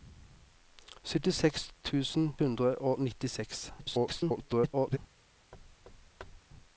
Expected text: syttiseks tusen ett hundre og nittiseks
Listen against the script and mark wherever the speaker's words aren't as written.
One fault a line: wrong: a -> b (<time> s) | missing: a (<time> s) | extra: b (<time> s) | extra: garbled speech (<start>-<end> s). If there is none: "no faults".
missing: ett (2.4 s)
extra: garbled speech (3.8-5.0 s)